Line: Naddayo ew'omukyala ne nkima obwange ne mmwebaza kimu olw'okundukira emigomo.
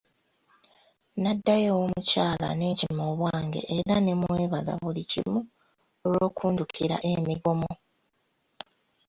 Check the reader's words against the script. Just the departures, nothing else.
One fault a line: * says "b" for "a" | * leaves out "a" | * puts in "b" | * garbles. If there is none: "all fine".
* puts in "era"
* puts in "buli"